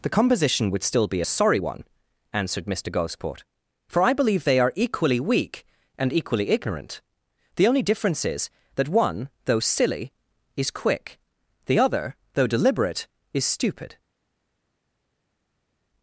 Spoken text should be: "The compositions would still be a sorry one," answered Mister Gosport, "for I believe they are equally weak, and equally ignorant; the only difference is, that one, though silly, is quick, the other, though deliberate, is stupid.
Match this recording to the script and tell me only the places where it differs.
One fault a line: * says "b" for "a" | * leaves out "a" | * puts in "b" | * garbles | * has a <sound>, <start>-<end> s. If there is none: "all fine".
* says "composition" for "compositions"